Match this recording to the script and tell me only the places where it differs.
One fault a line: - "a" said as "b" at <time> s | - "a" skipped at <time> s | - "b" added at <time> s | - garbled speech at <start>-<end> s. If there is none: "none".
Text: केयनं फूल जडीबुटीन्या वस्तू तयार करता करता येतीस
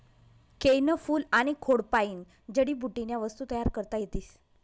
- "आनी खोडपायीन" added at 1.3 s
- "करता" skipped at 4.0 s